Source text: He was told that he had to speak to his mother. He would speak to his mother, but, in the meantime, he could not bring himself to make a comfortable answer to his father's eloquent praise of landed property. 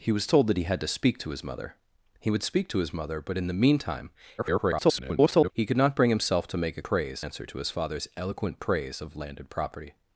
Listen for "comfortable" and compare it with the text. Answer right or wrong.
wrong